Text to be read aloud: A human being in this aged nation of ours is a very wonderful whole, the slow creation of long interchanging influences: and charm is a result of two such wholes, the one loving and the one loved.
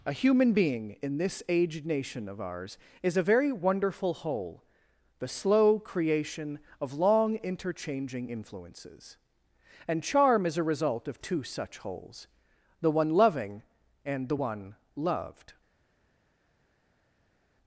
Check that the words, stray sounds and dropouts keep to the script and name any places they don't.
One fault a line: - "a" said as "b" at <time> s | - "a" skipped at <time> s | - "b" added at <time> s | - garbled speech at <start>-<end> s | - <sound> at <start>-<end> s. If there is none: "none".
none